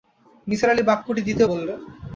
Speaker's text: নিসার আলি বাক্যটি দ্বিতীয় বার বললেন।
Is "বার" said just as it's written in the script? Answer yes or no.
no